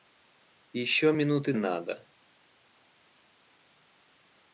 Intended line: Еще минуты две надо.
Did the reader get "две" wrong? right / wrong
wrong